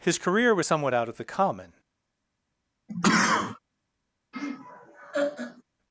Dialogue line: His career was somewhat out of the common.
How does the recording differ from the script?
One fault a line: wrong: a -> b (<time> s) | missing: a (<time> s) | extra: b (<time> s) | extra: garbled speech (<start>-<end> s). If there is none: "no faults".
no faults